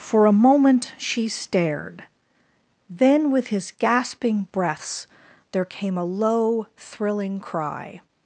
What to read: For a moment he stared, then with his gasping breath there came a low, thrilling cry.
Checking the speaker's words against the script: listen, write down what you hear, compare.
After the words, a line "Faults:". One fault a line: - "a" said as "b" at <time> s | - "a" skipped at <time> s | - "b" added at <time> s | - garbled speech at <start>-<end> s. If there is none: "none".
For a moment she stared, then with his gasping breaths there came a low, thrilling cry.
Faults:
- "he" said as "she" at 1.0 s
- "breath" said as "breaths" at 4.5 s